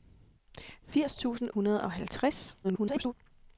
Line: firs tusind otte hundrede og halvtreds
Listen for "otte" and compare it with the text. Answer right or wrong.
wrong